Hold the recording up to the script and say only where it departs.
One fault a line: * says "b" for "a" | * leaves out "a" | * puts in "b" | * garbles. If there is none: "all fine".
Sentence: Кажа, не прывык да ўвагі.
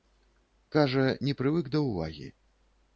all fine